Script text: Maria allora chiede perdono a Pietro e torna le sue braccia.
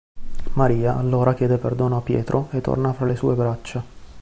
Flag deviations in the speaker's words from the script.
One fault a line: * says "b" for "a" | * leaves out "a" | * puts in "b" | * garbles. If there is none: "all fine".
* puts in "fra"